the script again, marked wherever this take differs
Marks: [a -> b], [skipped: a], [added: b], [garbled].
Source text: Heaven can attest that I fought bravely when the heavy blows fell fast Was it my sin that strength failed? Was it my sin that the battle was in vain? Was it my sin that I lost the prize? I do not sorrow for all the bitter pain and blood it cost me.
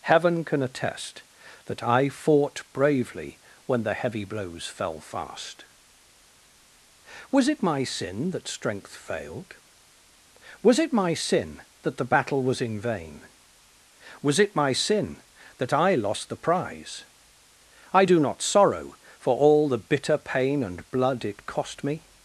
Heaven can attest that I fought bravely when the heavy blows fell fast Was it my sin that strength failed? Was it my sin that the battle was in vain? Was it my sin that I lost the prize? I do not sorrow for all the bitter pain and blood it cost me.